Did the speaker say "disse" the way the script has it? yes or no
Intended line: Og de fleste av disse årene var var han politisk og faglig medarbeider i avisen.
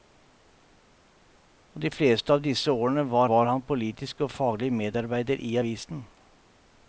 yes